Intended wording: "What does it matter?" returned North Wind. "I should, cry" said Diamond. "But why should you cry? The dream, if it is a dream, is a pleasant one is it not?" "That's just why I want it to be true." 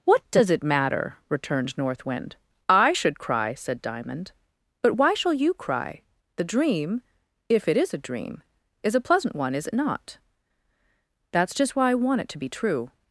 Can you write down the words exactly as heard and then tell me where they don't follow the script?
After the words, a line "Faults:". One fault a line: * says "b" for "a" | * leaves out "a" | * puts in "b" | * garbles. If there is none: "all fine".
"What does it matter?" returned North Wind. "I should, cry" said Diamond. "But why shall you cry? The dream, if it is a dream, is a pleasant one is it not?" "That's just why I want it to be true."
Faults:
* says "shall" for "should"